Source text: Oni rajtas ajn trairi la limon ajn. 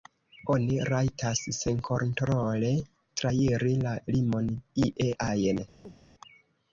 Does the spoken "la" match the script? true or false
true